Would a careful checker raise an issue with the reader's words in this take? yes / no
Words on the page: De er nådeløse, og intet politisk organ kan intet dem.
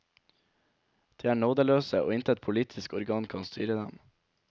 yes